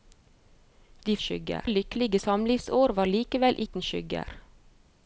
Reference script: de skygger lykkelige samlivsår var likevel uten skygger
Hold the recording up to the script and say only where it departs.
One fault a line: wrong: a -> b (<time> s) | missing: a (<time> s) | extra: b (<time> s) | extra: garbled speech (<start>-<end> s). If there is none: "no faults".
no faults